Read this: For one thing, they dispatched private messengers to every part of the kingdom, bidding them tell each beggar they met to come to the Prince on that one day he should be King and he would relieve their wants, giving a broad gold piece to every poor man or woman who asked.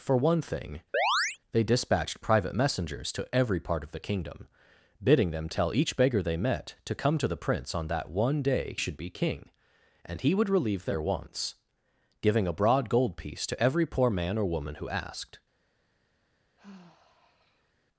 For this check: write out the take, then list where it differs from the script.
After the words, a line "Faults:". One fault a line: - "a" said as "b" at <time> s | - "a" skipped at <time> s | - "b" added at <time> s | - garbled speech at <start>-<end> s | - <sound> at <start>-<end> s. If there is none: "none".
For one thing, they dispatched private messengers to every part of the kingdom, bidding them tell each beggar they met to come to the Prince on that one day should be King and he would relieve their wants, giving a broad gold piece to every poor man or woman who asked.
Faults:
- chirp at 0.9-1.4 s
- "he" skipped at 8.8 s
- sigh at 16.6-17.7 s